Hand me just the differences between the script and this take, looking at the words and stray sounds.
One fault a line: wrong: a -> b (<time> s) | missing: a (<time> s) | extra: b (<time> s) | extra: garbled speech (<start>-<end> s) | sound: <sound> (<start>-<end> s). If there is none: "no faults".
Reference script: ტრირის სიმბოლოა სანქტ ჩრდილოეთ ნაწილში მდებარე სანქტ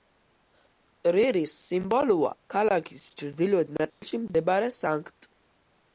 wrong: სანქტ -> ქალაქის (2.6 s)
sound: dropout (3.9-4.0 s)